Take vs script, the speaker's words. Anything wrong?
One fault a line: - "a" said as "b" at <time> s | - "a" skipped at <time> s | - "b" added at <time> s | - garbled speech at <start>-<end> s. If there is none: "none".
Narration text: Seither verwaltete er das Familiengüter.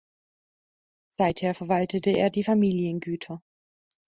- "das" said as "die" at 2.3 s